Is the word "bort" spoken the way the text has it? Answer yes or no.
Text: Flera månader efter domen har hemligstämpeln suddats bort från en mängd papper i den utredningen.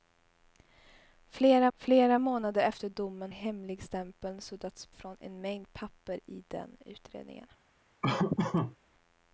no